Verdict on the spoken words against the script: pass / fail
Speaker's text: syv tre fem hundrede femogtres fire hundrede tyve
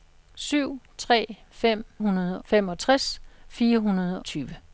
pass